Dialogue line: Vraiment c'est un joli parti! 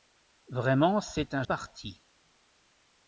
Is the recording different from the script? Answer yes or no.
yes